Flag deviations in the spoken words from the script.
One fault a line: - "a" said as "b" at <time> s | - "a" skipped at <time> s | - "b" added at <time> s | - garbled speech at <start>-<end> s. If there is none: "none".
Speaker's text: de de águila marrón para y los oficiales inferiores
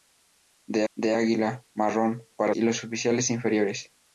none